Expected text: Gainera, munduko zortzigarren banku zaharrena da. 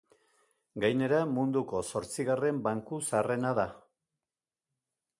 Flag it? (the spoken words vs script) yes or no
no